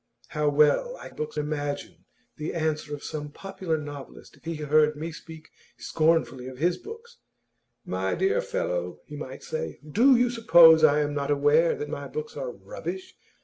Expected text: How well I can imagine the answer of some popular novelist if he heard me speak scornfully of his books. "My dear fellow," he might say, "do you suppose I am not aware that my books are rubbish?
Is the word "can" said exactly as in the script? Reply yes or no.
no